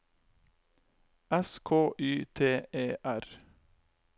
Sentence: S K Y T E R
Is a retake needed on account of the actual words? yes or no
no